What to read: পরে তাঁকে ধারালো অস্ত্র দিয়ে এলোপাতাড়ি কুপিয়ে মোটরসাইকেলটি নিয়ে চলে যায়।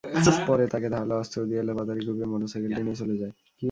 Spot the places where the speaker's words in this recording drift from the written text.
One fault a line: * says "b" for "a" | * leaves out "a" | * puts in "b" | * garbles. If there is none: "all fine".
all fine